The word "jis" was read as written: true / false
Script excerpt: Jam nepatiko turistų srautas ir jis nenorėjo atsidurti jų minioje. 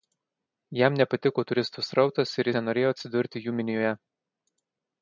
false